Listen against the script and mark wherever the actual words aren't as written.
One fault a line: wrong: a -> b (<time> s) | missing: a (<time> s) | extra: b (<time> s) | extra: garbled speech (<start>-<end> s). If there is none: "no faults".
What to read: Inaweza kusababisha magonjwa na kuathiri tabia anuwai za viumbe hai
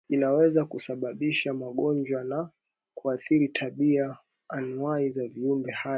no faults